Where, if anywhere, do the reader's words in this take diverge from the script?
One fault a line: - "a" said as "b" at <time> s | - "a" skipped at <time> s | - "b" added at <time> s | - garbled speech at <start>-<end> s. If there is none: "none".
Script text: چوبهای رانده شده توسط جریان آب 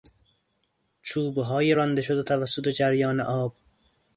none